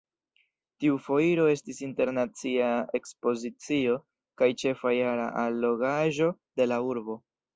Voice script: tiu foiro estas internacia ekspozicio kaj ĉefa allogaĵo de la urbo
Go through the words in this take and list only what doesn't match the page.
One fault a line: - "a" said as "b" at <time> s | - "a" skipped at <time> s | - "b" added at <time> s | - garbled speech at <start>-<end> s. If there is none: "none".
- "estas" said as "estis" at 1.6 s
- "jara" added at 5.0 s